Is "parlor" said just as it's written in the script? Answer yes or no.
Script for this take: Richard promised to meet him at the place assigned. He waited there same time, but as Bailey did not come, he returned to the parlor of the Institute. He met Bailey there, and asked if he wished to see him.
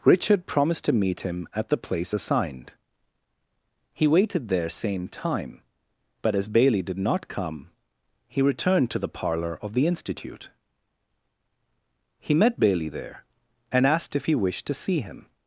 yes